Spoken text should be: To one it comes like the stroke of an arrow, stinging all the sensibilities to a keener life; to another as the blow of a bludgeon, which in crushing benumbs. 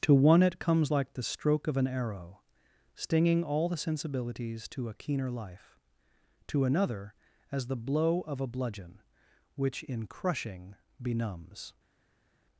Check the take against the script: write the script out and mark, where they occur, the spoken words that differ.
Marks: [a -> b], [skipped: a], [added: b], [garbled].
To one it comes like the stroke of an arrow, stinging all the sensibilities to a keener life; to another as the blow of a bludgeon, which in crushing benumbs.